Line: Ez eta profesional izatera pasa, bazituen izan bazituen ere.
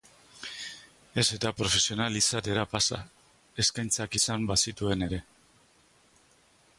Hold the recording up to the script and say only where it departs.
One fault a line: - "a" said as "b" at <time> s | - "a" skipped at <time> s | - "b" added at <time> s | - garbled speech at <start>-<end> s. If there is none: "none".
- "bazituen" said as "eskaintzak" at 3.6 s